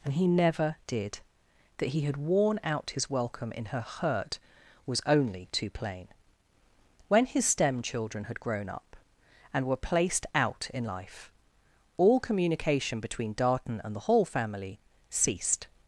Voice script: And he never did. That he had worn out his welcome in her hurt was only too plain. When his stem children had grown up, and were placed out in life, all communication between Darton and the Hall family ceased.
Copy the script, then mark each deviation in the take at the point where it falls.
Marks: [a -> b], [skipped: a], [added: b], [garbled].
And he never did. That he had worn out his welcome in her hurt was only too plain. When his stem children had grown up, and were placed out in life, all communication between Darton and the Hall family ceased.